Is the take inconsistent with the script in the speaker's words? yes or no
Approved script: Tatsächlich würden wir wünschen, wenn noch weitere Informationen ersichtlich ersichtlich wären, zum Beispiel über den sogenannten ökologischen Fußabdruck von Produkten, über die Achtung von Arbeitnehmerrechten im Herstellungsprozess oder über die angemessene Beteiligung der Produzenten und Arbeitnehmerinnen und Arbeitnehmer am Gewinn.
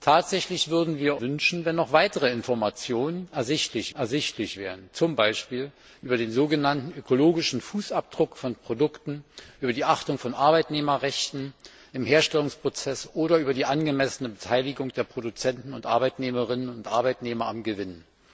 no